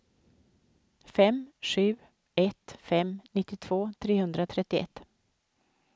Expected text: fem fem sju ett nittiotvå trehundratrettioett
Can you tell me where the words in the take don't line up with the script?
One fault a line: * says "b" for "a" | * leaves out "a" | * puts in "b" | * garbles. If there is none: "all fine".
* leaves out "fem"
* puts in "fem"